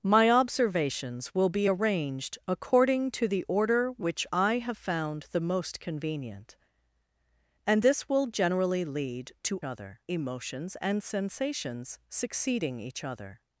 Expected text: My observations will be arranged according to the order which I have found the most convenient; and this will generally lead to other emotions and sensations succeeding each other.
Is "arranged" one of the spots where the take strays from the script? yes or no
no